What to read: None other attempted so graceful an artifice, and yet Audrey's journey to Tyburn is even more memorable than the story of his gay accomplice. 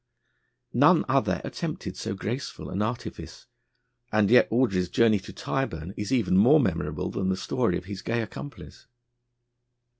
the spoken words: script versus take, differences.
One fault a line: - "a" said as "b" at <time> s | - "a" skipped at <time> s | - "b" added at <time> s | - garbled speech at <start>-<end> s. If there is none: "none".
none